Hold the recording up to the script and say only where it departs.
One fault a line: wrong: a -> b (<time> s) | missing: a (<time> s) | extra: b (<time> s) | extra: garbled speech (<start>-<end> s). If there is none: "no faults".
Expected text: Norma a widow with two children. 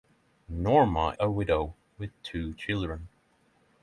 no faults